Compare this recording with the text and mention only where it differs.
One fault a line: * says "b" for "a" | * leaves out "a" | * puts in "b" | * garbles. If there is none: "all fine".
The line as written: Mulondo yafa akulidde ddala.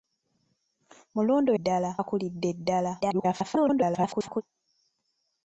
* says "ddala" for "yafa"
* garbles